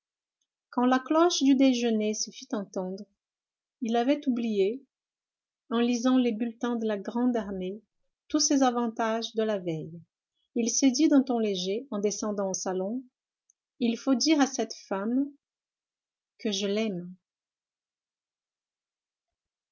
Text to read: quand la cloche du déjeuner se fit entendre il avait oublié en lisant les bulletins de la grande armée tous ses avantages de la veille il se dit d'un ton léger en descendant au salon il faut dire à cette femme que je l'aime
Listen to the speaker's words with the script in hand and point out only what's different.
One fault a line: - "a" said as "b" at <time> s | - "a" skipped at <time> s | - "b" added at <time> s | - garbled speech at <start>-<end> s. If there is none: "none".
none